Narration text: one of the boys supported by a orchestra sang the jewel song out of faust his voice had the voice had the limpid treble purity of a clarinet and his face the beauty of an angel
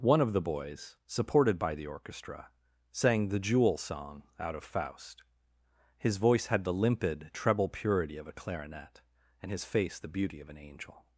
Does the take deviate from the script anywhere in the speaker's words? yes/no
yes